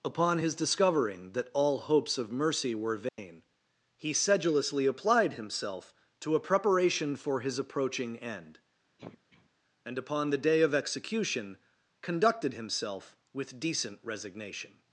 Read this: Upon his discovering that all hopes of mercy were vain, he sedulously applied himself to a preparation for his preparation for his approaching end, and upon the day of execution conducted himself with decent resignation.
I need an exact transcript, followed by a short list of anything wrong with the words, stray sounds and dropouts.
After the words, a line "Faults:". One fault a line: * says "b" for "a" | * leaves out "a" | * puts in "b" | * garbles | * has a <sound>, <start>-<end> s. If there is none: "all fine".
Upon his discovering that all hopes of mercy were vain, he sedulously applied himself to a preparation for his approaching end, and upon the day of execution conducted himself with decent resignation.
Faults:
* has a dropout, 3.1-3.2 s
* leaves out "preparation for his"
* has a throat clearing, 9.0-9.5 s